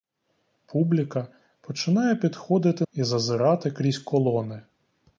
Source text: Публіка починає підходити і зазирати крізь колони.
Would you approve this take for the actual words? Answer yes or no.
yes